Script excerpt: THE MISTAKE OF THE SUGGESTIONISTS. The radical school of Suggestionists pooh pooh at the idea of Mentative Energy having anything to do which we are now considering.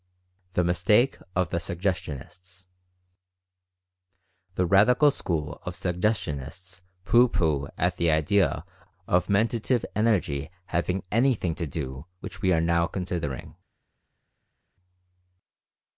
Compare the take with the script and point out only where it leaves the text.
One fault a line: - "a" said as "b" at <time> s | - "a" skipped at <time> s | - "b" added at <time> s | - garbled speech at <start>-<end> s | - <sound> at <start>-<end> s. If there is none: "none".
none